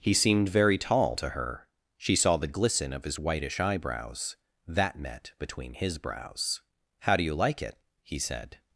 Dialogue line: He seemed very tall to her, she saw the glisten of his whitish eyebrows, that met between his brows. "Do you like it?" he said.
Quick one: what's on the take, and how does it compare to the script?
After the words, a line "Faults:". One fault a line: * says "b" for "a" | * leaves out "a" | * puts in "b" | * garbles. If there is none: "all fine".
He seemed very tall to her, she saw the glisten of his whitish eyebrows, that met between his brows. "How do you like it?" he said.
Faults:
* puts in "How"